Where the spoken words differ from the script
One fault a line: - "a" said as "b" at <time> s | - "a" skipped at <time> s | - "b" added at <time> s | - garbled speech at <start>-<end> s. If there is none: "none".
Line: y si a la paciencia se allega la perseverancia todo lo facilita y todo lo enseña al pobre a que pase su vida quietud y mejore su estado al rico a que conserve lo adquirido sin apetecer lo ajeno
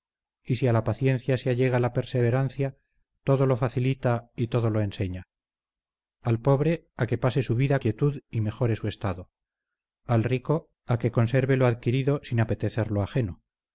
none